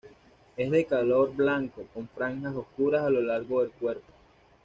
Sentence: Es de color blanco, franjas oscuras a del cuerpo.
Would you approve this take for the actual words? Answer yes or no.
no